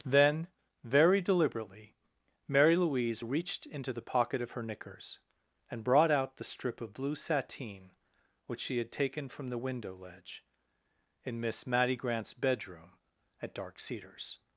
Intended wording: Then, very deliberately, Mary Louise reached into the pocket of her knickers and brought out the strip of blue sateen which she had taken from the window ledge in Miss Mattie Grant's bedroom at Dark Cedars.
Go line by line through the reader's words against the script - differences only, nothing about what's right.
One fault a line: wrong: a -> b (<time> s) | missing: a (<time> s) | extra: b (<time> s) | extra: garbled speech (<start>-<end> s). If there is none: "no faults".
no faults